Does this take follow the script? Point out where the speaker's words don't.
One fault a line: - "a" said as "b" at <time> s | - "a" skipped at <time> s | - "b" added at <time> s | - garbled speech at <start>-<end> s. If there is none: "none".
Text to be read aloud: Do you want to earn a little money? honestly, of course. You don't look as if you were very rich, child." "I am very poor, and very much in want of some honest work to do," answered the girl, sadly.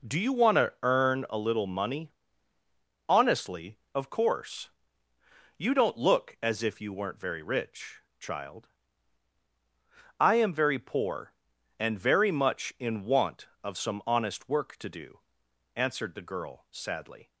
- "were" said as "weren't" at 6.9 s